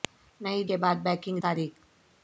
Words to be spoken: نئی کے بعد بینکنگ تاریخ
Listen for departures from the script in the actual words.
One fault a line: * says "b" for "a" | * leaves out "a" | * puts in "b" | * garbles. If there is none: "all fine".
all fine